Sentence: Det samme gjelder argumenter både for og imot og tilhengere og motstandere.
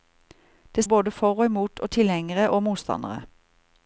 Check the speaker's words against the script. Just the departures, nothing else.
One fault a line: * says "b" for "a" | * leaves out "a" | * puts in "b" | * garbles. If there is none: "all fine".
* leaves out "samme gjelder argumenter"